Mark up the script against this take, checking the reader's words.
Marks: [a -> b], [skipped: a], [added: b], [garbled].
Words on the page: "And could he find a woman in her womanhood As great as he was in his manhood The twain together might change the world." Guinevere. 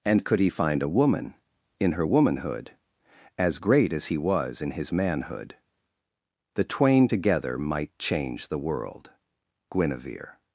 "And could he find a woman in her womanhood As great as he was in his manhood The twain together might change the world." Guinevere.